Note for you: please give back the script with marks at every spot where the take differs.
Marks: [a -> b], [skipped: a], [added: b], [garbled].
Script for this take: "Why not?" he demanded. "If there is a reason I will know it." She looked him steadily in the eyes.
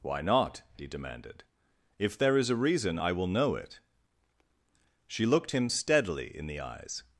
"Why not?" he demanded. "If there is a reason I will know it." She looked him steadily in the eyes.